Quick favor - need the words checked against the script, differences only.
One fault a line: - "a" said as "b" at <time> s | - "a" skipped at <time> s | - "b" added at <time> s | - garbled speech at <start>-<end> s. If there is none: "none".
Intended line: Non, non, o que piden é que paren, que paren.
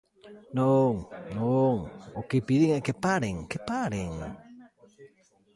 none